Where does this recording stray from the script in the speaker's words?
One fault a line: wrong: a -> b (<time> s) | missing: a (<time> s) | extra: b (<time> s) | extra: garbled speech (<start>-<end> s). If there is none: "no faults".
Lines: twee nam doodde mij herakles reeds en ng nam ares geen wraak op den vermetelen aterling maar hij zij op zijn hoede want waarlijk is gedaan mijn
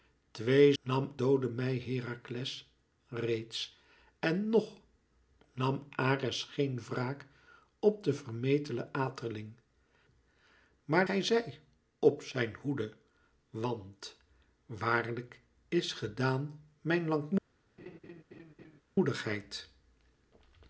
no faults